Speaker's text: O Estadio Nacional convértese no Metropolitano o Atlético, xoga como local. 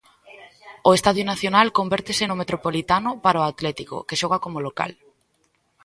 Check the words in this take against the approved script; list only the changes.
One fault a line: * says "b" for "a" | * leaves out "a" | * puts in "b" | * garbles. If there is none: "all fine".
* puts in "para"
* puts in "que"